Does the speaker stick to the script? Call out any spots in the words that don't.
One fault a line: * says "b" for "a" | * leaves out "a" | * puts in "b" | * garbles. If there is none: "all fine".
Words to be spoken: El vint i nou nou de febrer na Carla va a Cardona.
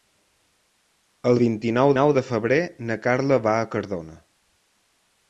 all fine